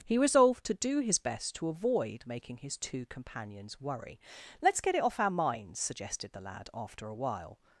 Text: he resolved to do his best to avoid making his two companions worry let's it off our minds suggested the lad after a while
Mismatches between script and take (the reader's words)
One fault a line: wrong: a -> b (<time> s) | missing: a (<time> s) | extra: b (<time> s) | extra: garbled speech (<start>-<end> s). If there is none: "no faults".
extra: get (4.8 s)